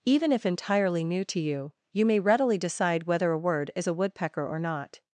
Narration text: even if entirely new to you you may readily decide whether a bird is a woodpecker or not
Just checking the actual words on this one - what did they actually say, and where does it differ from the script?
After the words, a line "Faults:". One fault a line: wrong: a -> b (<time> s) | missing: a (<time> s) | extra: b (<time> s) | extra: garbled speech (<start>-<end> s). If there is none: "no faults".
even if entirely new to you you may readily decide whether a word is a woodpecker or not
Faults:
wrong: bird -> word (3.4 s)